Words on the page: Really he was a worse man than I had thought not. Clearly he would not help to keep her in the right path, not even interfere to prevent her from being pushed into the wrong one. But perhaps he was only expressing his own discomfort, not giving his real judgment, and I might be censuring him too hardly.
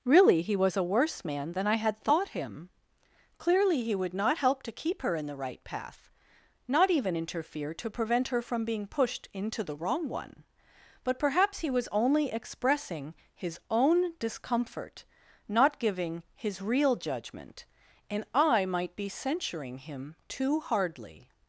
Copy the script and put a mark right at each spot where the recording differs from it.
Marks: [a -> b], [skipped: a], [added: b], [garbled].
Really he was a worse man than I had thought [not. -> him] Clearly he would not help to keep her in the right path, not even interfere to prevent her from being pushed into the wrong one. But perhaps he was only expressing his own discomfort, not giving his real judgment, and I might be censuring him too hardly.